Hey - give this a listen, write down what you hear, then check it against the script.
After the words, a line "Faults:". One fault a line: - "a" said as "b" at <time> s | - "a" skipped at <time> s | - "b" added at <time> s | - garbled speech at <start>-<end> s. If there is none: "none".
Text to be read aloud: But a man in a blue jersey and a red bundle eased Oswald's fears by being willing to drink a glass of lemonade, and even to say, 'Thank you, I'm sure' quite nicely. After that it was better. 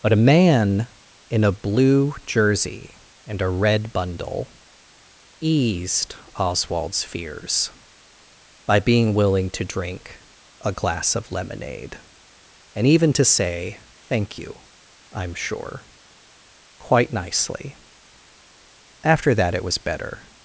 But a man in a blue jersey and a red bundle eased Oswald's fears by being willing to drink a glass of lemonade, and even to say, 'Thank you, I'm sure' quite nicely. After that it was better.
Faults:
none